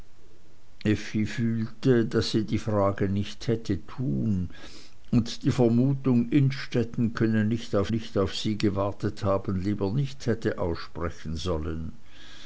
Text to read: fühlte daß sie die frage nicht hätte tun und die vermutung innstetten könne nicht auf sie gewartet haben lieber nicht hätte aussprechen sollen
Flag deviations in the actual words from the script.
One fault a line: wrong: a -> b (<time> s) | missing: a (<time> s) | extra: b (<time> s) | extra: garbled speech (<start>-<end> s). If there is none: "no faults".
extra: nicht auf (7.9 s)